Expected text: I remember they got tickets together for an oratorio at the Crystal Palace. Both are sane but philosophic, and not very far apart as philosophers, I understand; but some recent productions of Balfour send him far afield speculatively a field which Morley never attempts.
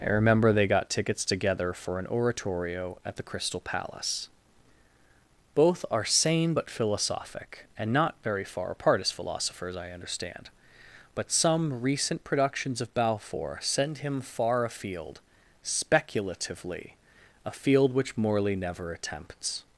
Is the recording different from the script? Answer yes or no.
no